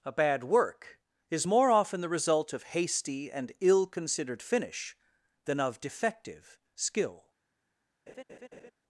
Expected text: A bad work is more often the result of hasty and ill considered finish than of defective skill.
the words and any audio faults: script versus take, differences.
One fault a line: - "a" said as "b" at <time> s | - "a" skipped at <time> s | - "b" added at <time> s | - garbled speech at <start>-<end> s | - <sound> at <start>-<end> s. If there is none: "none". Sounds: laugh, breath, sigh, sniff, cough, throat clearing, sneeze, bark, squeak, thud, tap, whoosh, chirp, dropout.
- laugh at 8.1-8.7 s